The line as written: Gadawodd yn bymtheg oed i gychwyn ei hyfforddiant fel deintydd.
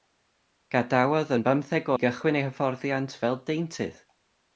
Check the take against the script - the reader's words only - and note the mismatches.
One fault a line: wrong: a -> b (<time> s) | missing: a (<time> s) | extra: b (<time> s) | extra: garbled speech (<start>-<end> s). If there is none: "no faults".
missing: oed (1.9 s)